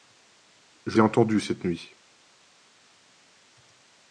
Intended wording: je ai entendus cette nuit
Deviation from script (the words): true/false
false